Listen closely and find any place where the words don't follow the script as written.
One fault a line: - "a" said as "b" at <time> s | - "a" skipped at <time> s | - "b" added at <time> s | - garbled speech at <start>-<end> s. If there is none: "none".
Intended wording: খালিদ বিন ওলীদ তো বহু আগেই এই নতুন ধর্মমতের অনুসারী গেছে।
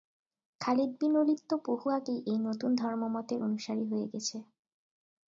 - "হয়ে" added at 3.9 s